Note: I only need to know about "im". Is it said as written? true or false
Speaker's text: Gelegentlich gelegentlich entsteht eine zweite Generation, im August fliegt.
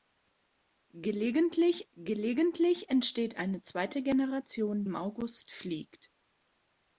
true